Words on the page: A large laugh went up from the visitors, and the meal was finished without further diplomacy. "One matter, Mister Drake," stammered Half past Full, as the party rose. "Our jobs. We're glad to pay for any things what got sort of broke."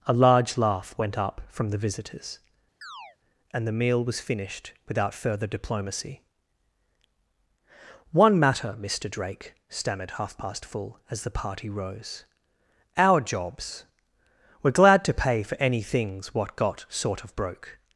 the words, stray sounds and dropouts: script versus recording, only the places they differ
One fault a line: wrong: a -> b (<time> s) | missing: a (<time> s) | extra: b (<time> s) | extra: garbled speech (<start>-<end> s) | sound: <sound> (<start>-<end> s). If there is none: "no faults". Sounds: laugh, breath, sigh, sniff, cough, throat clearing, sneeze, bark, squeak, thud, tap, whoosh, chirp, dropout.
sound: chirp (2.8-3.2 s)